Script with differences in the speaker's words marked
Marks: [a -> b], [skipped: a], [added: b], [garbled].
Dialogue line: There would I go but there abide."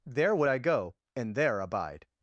There would I go [but -> and] there abide."